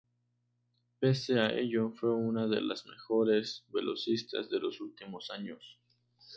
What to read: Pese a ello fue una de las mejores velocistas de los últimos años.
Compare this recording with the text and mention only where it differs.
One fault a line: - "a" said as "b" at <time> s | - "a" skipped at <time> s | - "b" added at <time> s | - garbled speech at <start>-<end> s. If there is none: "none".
none